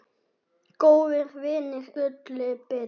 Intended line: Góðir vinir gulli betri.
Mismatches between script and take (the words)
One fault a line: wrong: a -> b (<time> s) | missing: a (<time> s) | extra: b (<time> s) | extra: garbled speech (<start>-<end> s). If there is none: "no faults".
no faults